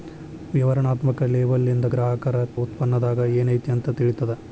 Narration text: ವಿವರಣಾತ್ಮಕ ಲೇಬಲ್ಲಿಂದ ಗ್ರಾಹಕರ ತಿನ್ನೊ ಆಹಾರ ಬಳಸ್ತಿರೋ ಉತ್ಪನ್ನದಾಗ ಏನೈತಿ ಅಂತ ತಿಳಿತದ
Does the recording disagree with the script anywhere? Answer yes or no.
yes